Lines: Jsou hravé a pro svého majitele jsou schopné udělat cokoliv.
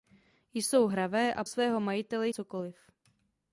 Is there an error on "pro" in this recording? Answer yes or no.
yes